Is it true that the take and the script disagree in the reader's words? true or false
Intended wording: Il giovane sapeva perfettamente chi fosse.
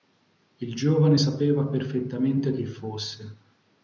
false